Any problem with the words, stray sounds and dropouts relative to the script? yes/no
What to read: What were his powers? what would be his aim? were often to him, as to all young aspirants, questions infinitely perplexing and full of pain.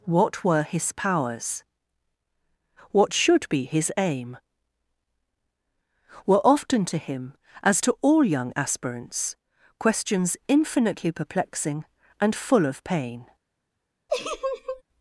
yes